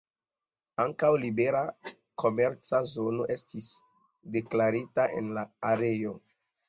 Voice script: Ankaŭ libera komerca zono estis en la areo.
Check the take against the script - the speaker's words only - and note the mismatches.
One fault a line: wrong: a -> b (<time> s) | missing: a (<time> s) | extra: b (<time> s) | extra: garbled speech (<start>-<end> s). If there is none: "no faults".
extra: deklarita (4.4 s)